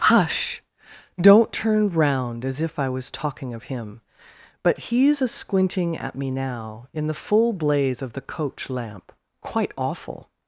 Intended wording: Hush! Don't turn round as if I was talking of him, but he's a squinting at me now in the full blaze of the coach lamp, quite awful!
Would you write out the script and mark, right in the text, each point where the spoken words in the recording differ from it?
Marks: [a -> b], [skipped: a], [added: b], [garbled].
Hush! Don't turn round as if I was talking of him, but he's a squinting at me now in the full blaze of the coach lamp, quite awful!